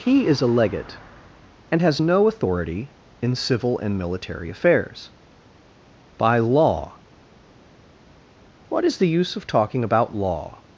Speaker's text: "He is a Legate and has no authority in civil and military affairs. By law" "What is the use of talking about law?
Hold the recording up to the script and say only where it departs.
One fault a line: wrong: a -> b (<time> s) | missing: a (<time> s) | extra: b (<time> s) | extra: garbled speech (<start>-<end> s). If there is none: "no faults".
no faults